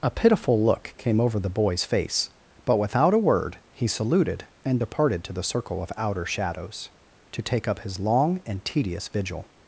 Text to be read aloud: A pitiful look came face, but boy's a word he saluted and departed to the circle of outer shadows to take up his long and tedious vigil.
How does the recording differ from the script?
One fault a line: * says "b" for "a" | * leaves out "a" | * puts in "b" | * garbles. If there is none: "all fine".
* puts in "over the boy's"
* says "without" for "boy's"